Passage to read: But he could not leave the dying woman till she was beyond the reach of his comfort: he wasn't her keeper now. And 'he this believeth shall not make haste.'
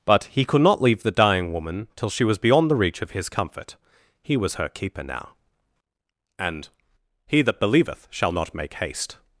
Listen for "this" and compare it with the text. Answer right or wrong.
wrong